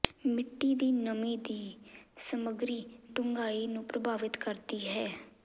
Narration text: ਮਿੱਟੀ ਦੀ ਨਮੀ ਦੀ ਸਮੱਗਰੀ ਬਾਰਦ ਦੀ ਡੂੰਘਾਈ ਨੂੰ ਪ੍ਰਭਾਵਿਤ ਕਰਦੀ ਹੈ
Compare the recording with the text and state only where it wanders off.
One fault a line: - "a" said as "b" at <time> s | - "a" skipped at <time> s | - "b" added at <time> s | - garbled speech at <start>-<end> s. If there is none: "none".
- "ਬਾਰਦ ਦੀ" skipped at 2.8 s